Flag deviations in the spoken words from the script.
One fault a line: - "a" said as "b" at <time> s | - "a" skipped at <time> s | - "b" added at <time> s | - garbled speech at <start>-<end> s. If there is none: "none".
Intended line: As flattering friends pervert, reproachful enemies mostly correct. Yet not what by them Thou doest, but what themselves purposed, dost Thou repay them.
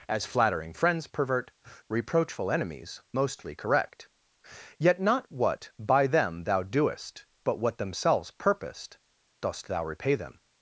none